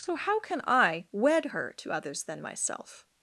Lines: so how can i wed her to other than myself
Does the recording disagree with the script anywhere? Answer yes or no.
yes